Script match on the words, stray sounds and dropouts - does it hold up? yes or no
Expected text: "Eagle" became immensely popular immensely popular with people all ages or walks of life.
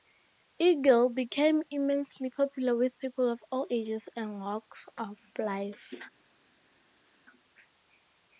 no